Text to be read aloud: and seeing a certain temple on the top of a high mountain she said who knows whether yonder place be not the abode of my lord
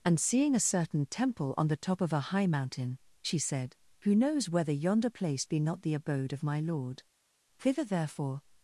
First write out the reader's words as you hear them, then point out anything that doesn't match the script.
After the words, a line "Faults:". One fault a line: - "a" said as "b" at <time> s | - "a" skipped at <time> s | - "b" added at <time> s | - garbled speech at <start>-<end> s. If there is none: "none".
and seeing a certain temple on the top of a high mountain she said who knows whether yonder place be not the abode of my lord thither therefore
Faults:
- "thither therefore" added at 7.6 s